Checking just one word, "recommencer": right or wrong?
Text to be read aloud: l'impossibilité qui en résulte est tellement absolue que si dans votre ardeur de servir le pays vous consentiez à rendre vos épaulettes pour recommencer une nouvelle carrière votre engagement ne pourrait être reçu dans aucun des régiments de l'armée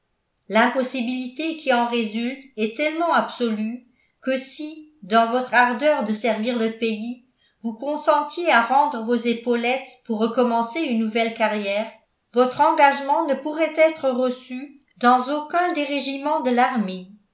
right